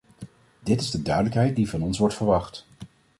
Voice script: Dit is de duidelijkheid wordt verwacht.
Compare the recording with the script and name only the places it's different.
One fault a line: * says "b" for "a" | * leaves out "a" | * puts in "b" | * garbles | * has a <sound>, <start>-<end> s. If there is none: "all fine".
* puts in "die van ons"